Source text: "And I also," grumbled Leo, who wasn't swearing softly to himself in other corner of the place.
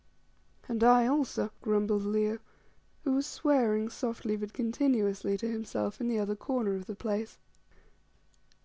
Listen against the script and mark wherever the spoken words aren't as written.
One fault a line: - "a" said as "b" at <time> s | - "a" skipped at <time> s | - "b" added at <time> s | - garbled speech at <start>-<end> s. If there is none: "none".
- "wasn't" said as "was" at 3.1 s
- "but continuously" added at 4.4 s
- "the" added at 6.1 s